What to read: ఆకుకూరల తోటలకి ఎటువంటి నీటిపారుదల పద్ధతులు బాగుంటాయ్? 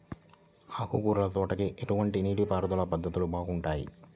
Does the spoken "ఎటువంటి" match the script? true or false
true